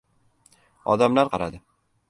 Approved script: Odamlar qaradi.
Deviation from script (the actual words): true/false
false